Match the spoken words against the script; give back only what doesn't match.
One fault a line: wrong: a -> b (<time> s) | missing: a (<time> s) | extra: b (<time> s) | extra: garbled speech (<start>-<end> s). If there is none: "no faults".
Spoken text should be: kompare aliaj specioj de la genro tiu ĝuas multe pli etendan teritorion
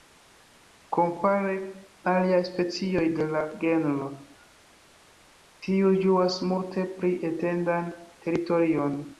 no faults